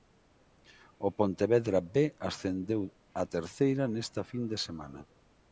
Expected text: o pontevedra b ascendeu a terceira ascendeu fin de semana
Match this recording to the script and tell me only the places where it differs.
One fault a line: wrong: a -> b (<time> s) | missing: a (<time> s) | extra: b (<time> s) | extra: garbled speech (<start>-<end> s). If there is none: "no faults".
wrong: ascendeu -> nesta (3.9 s)